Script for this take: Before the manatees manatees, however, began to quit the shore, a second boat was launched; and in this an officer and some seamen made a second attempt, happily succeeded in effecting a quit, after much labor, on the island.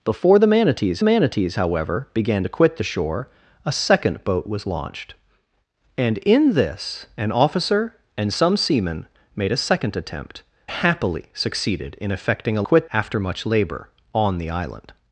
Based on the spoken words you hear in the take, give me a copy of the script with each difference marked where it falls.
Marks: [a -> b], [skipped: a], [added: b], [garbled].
Before the manatees manatees, however, began to quit the shore, a second boat was launched; and in this an officer and some seamen made a second attempt, happily succeeded in effecting a quit, after much labor, on the island.